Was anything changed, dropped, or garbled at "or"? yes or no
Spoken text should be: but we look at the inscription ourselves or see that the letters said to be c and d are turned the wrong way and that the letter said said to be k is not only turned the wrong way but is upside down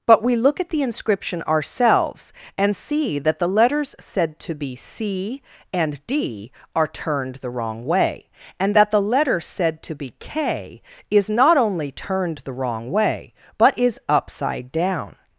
yes